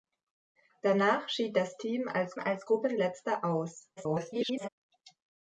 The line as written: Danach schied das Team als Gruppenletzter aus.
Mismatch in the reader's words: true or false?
true